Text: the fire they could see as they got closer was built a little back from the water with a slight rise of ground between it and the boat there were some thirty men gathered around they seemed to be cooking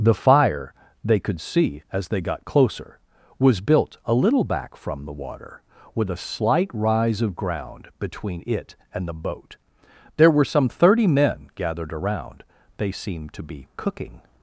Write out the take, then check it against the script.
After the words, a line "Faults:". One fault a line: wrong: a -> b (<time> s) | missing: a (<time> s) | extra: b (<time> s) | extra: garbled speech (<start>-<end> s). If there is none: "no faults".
the fire they could see as they got closer was built a little back from the water with a slight rise of ground between it and the boat there were some thirty men gathered around they seemed to be cooking
Faults:
no faults